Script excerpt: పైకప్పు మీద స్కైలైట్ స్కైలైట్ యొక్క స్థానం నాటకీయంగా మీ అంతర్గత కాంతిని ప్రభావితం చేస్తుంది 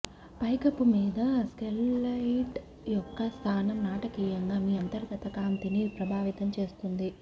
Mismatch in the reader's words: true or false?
true